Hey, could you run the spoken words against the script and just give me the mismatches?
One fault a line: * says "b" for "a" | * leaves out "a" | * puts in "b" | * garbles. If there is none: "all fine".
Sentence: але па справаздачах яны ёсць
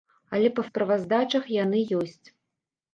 all fine